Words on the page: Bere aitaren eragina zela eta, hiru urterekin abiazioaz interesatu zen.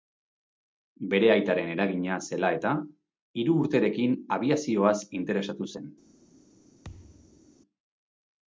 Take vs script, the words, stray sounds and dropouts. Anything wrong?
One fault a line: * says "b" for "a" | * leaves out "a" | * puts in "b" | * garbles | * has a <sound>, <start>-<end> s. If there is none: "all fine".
* has a thud, 6.8-7.5 s